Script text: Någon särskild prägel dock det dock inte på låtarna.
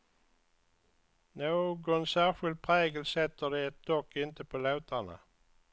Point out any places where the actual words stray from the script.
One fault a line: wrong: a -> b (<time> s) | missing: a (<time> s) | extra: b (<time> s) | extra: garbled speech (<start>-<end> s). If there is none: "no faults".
wrong: dock -> sätter (3.0 s)